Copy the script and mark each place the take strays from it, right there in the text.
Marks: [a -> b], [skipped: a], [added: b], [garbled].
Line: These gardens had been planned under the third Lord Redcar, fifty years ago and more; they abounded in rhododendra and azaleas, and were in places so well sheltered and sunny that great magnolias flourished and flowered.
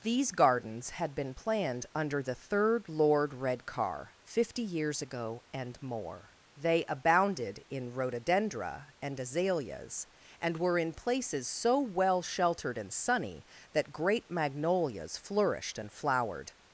These gardens had been planned under the third Lord Redcar, fifty years ago and more; they abounded in rhododendra and azaleas, and were in places so well sheltered and sunny that great magnolias flourished and flowered.